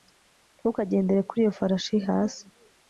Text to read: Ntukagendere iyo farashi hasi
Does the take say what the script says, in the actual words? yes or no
no